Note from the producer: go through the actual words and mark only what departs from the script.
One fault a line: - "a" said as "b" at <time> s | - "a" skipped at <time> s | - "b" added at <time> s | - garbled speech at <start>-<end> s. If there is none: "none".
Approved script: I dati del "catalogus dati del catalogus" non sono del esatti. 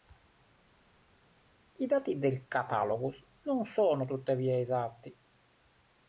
- "dati del catalogus" skipped at 3.2 s
- "del" said as "tuttavia" at 4.0 s